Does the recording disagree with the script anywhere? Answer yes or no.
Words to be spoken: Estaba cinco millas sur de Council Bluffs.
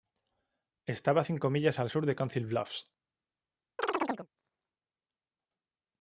yes